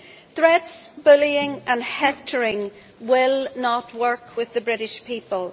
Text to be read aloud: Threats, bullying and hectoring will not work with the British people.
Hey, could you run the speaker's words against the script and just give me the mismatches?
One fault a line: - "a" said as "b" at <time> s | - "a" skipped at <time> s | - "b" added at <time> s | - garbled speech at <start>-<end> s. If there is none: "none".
none